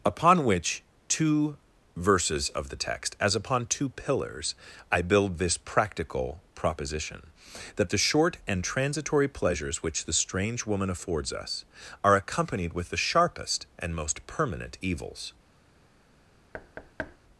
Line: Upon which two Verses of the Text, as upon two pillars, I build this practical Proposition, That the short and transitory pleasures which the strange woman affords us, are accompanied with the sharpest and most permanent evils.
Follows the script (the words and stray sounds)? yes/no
no